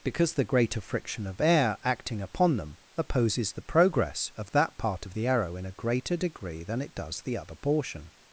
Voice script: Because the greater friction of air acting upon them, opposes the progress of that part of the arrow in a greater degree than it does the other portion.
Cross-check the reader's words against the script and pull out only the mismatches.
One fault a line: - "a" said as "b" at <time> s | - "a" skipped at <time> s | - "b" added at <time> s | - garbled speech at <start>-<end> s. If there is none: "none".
none